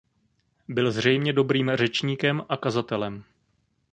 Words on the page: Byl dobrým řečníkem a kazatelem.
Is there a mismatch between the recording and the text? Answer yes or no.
yes